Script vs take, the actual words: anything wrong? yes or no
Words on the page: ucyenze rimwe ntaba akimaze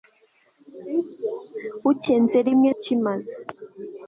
yes